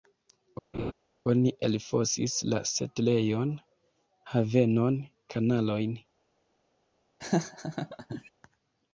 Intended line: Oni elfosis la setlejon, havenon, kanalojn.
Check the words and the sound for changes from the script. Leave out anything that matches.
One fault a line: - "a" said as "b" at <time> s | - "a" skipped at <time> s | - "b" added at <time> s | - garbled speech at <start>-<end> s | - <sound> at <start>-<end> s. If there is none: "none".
- laugh at 0.7-0.9 s
- laugh at 7.2-8.3 s